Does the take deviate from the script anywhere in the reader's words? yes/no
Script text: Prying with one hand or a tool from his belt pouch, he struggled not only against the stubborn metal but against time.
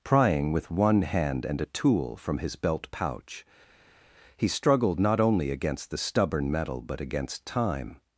yes